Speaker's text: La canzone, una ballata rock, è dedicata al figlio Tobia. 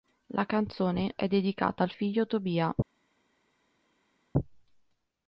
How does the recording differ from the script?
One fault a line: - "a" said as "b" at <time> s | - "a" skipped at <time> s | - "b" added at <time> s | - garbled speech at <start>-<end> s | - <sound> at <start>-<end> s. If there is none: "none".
- "una ballata rock" skipped at 1.1 s